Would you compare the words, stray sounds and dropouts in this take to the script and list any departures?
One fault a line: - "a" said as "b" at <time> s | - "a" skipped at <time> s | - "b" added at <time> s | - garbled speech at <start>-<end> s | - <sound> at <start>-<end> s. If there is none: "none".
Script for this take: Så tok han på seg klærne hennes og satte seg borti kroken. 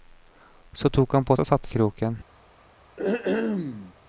- "seg klærne hennes" skipped at 1.4 s
- "seg borti" skipped at 1.7 s
- throat clearing at 3.0-3.9 s